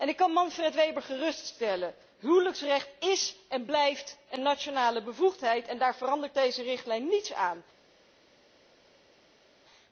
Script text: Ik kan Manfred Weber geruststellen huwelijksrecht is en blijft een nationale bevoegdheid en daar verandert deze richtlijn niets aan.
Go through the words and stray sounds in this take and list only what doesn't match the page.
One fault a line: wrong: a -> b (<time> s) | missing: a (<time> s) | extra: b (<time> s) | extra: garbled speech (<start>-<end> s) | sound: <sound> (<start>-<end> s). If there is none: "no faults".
no faults